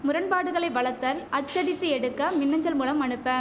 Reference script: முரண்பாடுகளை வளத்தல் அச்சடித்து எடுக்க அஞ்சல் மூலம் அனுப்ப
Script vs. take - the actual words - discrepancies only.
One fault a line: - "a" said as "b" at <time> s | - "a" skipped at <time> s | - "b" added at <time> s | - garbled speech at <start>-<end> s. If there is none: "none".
- "மின்" added at 2.3 s